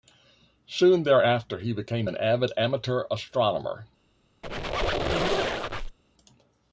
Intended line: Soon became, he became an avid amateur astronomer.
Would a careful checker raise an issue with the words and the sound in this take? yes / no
yes